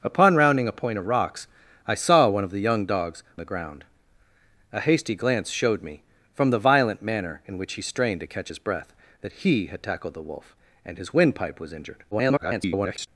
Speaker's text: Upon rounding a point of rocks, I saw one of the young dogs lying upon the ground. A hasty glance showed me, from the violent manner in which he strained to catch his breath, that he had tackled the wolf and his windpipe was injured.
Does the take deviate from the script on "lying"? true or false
true